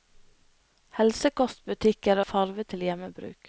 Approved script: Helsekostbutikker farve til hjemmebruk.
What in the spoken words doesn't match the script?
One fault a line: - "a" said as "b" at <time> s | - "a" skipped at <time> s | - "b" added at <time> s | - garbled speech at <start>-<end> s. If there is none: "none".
none